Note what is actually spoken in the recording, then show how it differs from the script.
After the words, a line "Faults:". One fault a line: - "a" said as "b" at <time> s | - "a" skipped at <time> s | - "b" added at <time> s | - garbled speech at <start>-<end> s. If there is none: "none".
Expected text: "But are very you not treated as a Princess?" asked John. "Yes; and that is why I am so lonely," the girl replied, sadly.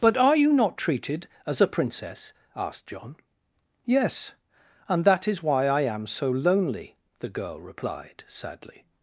"But are you not treated as a Princess?" asked John. "Yes; and that is why I am so lonely," the girl replied, sadly.
Faults:
- "very" skipped at 0.3 s